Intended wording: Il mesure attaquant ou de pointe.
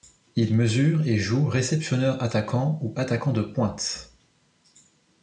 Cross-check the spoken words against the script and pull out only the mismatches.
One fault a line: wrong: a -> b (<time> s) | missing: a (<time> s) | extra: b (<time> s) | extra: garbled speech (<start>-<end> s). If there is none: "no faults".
extra: et joue réceptionneur (1.1 s)
extra: attaquant (3.0 s)